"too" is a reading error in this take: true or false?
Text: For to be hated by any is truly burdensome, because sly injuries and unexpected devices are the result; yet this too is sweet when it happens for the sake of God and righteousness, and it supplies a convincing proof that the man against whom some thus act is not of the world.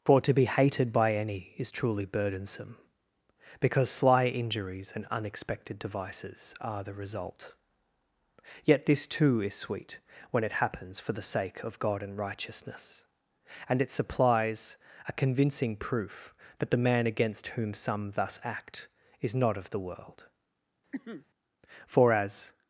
false